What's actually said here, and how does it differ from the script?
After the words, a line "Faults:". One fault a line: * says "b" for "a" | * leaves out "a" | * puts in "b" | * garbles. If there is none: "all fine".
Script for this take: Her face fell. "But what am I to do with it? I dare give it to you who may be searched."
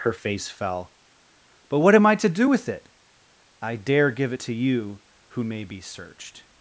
Her face fell. "But what am I to do with it? I dare give it to you who may be searched."
Faults:
all fine